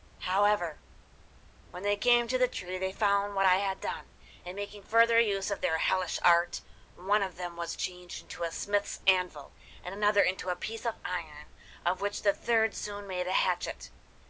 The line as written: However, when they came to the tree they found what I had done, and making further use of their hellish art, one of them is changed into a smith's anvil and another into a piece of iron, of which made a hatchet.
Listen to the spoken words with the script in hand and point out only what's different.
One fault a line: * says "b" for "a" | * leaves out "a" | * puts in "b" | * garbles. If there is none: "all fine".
* says "was" for "is"
* puts in "the third soon"